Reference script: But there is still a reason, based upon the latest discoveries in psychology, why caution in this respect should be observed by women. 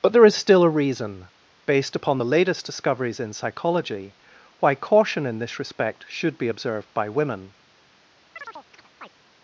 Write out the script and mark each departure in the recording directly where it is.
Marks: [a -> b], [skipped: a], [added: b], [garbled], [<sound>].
But there is still a reason, based upon the latest discoveries in psychology, why caution in this respect should be observed by women. [chirp]